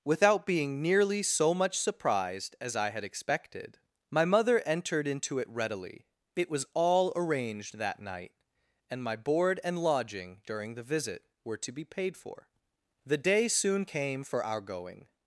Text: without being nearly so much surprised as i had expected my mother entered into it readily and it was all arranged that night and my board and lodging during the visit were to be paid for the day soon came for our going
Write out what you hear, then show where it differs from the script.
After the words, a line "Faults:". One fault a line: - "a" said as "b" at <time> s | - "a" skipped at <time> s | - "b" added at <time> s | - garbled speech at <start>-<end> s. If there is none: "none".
without being nearly so much surprised as i had expected my mother entered into it readily it was all arranged that night and my board and lodging during the visit were to be paid for the day soon came for our going
Faults:
- "and" skipped at 6.1 s